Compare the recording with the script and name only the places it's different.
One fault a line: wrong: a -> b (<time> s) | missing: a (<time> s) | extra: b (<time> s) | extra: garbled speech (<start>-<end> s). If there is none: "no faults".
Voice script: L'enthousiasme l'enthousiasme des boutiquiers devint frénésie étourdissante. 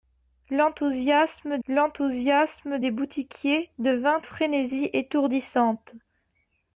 no faults